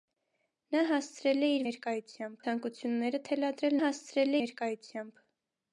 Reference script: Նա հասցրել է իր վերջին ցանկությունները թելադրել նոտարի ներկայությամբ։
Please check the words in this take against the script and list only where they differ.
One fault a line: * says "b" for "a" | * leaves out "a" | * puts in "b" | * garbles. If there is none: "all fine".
* says "ներկայությամբ" for "վերջին"
* says "հասցրել" for "նոտարի"